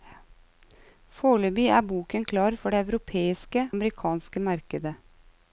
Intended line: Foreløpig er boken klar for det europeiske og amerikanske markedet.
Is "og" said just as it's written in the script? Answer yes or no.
no